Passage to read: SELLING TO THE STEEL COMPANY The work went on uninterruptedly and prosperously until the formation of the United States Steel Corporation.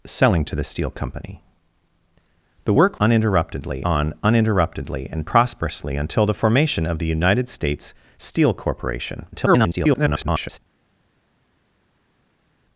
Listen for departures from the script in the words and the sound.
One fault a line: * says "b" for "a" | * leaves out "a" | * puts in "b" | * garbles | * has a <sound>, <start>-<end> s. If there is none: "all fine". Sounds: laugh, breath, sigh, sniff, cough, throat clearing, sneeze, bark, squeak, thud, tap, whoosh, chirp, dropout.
* says "uninterruptedly" for "went"
* garbles